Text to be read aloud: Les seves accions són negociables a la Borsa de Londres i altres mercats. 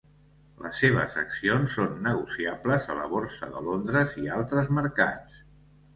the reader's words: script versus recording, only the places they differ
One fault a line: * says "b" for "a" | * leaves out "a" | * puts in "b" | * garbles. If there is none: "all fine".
all fine